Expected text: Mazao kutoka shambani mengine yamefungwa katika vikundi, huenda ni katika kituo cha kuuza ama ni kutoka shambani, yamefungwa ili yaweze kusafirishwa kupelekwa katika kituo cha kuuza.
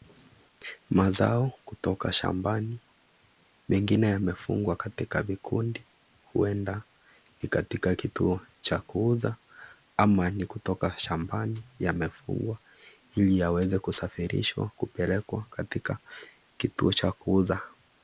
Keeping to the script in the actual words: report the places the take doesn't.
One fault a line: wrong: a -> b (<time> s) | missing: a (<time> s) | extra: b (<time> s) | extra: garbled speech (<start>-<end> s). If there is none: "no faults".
no faults